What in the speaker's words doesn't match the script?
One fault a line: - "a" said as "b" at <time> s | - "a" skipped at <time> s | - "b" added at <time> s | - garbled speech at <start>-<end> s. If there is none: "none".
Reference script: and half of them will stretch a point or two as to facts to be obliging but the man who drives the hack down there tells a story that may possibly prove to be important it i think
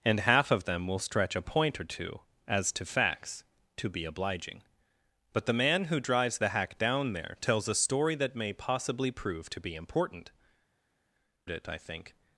none